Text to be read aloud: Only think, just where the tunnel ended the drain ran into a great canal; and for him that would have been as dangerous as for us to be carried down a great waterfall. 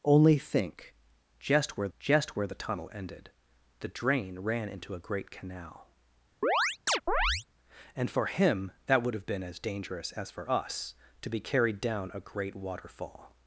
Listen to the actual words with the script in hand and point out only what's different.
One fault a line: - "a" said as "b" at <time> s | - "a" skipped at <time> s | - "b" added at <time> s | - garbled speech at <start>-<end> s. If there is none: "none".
- "just where" added at 2.0 s